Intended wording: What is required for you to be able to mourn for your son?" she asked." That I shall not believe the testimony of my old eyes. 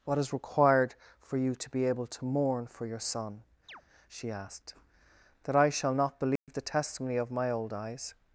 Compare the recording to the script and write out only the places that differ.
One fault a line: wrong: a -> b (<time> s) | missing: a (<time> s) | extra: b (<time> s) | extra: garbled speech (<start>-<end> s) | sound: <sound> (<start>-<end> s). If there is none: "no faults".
sound: chirp (3.7-3.8 s)
sound: dropout (6.4-6.5 s)